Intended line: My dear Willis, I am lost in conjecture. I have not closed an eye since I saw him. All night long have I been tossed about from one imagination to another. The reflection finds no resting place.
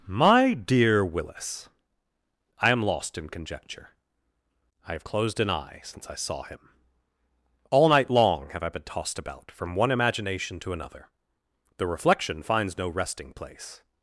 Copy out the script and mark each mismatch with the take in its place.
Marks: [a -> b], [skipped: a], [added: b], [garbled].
My dear Willis, I am lost in conjecture. I have [skipped: not] closed an eye since I saw him. All night long have I been tossed about from one imagination to another. The reflection finds no resting place.